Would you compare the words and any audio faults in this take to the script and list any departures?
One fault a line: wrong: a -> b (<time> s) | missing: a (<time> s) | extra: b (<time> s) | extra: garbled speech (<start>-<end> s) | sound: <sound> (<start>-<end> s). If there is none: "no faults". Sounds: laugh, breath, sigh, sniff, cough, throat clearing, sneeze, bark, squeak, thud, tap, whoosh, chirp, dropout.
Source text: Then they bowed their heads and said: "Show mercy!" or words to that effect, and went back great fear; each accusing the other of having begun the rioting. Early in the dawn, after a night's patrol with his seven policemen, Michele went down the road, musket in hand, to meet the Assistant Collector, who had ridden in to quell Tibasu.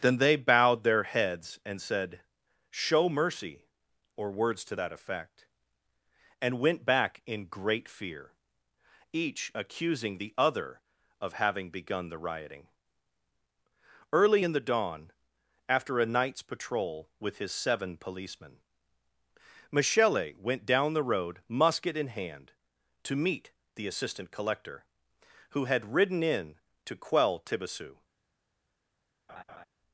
extra: in (7.3 s)
sound: laugh (29.3-29.7 s)